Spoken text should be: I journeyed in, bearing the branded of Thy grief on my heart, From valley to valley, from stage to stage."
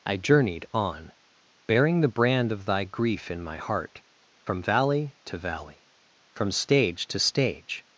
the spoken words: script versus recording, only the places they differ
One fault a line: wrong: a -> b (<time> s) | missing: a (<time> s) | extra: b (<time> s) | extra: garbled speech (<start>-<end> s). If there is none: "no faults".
wrong: in -> on (0.7 s)
wrong: branded -> brand (2.1 s)
wrong: on -> in (3.3 s)